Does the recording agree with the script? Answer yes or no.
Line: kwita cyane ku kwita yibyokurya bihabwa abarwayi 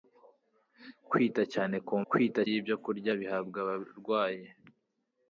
yes